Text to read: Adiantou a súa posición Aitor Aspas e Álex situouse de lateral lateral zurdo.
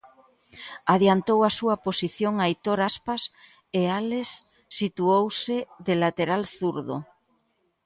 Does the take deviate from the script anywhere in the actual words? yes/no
yes